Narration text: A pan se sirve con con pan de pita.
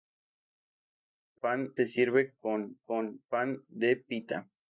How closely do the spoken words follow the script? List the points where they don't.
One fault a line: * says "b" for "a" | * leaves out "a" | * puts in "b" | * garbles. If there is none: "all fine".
all fine